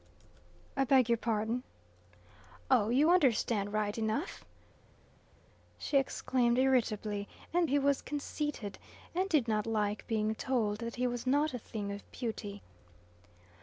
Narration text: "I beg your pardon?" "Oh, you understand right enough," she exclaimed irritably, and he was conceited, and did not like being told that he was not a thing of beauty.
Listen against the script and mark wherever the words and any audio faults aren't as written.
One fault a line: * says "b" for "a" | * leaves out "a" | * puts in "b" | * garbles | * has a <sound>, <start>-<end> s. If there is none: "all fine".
all fine